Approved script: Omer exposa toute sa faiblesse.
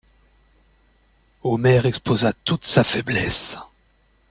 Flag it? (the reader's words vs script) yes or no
no